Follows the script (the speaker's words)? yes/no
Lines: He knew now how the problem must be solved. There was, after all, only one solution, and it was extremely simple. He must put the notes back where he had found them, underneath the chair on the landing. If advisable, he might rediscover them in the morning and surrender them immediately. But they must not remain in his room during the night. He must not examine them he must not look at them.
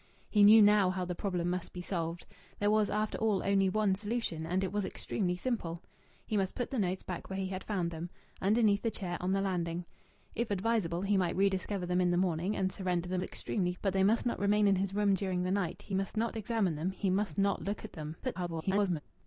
no